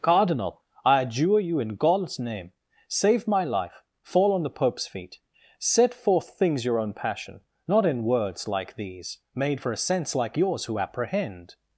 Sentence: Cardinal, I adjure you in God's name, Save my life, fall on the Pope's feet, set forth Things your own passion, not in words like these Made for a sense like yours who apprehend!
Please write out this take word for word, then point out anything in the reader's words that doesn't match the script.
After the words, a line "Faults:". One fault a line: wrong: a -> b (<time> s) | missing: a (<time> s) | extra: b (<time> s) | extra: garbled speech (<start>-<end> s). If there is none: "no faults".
Cardinal, I adjure you in God's name, Save my life, fall on the Pope's feet, set forth Things your own passion, not in words like these Made for a sense like yours who apprehend!
Faults:
no faults